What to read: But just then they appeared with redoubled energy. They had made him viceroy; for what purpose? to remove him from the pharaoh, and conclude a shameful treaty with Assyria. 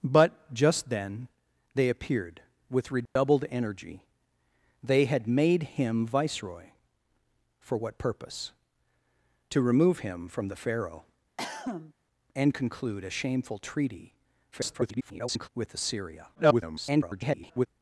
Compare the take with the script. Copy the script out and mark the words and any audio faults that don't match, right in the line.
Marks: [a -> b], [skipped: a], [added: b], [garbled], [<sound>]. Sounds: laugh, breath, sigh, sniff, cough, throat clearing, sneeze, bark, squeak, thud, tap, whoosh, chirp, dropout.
But just then they appeared with redoubled [dropout] energy. They had made him viceroy; for what purpose? to remove him from the pharaoh, [cough] and conclude a shameful treaty [garbled] with Assyria. [garbled]